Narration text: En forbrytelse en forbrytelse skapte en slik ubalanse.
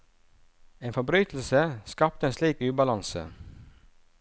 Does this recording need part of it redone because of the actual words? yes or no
yes